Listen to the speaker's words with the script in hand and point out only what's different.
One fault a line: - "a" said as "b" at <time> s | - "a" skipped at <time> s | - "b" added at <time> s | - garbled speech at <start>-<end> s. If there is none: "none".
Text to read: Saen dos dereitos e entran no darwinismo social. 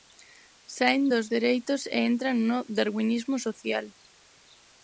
none